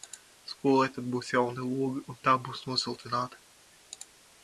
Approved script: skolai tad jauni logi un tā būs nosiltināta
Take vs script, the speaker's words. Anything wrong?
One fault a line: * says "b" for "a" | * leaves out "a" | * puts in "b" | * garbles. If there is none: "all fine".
* puts in "būs"